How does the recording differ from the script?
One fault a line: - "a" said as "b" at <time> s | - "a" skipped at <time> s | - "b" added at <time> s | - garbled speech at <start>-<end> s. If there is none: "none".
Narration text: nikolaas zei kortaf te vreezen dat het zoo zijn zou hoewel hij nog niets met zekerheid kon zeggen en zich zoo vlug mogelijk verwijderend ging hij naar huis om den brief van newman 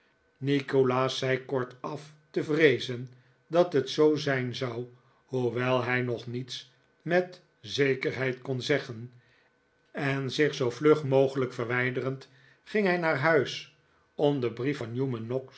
none